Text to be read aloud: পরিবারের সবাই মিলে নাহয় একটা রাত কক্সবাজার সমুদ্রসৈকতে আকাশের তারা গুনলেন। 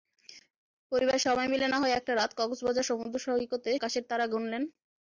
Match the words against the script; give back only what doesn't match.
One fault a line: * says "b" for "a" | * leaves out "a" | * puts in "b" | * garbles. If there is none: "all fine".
all fine